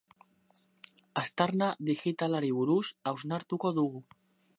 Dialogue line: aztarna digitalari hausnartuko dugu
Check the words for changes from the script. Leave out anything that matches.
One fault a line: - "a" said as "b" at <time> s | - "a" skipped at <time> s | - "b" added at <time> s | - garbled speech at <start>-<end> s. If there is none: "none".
- "buruz" added at 2.6 s